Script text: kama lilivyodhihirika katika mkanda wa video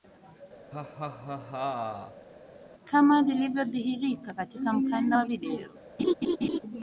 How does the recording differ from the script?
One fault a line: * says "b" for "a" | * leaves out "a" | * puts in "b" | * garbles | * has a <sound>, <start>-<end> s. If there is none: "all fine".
* has a laugh, 0.7-2.3 s
* has a laugh, 6.0-6.6 s